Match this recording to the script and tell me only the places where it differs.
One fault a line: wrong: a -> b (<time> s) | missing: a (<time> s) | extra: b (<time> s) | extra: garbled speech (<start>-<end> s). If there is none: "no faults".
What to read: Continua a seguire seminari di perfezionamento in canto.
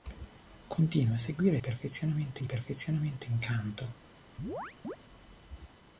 wrong: seminari -> perfezionamento (1.6 s)